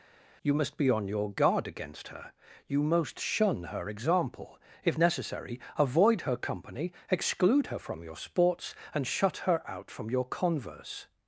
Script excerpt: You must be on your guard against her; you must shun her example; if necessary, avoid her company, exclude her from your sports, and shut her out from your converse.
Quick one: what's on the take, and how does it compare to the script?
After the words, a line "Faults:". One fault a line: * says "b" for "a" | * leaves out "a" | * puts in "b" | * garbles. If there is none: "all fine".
You must be on your guard against her; you most shun her example; if necessary, avoid her company, exclude her from your sports, and shut her out from your converse.
Faults:
* says "most" for "must"